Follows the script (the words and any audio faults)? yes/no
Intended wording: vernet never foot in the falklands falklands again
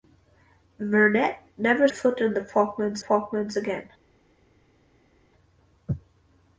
yes